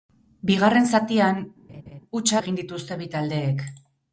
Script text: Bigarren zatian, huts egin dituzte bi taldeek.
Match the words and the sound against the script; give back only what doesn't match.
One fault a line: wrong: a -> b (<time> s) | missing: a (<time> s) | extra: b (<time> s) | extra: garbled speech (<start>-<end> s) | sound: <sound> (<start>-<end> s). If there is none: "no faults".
sound: laugh (1.7-2.0 s)